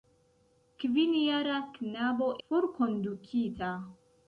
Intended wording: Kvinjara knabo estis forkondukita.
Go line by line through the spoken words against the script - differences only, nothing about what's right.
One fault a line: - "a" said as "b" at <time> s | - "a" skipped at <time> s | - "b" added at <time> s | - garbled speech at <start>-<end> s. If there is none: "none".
- "estis" skipped at 2.3 s